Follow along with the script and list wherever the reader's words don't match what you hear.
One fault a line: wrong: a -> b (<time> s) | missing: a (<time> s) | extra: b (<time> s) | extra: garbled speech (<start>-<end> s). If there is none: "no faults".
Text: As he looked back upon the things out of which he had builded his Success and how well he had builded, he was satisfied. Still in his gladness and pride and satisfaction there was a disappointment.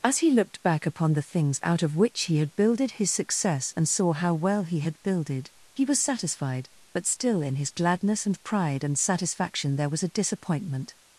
extra: saw (3.9 s)
extra: But (6.9 s)